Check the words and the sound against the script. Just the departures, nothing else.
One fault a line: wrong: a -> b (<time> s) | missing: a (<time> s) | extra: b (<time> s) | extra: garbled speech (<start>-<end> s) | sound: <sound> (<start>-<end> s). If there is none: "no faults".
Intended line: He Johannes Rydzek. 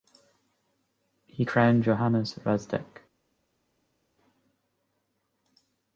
extra: crowned (1.4 s)